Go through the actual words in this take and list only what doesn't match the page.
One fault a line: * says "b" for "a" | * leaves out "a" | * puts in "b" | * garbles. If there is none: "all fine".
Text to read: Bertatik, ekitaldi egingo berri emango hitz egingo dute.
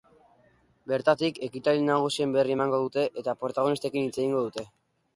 * says "nagusien" for "egingo"
* puts in "dute eta protagonistekin"